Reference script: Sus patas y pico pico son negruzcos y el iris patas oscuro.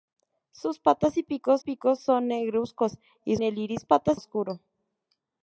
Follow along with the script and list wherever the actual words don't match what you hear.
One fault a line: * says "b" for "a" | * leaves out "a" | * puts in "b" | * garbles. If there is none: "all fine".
all fine